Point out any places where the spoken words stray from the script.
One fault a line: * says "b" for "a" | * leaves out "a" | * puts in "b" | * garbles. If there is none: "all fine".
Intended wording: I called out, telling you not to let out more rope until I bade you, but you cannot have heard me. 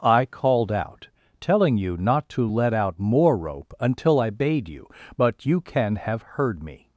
* says "can" for "cannot"